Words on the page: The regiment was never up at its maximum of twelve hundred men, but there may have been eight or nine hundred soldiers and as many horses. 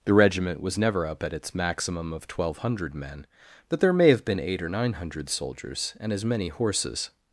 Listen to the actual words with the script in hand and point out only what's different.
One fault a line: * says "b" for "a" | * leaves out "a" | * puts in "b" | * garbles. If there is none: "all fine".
all fine